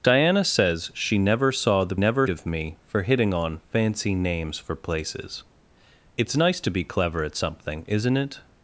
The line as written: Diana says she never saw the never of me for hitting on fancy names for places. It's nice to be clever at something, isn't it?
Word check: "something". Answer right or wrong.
right